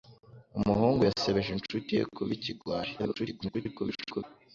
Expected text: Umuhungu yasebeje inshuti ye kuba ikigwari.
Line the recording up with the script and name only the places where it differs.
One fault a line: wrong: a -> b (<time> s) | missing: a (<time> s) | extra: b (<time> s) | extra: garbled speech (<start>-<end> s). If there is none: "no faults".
extra: garbled speech (3.0-4.2 s)